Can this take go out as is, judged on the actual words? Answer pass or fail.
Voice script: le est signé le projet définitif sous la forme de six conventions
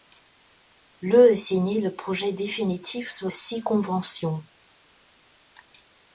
fail